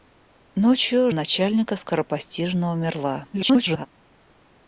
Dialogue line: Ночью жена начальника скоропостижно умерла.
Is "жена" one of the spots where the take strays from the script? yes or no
yes